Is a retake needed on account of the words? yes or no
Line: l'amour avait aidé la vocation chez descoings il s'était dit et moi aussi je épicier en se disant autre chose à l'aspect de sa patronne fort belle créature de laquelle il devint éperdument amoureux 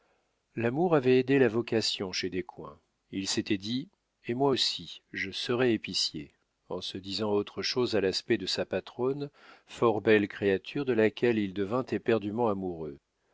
yes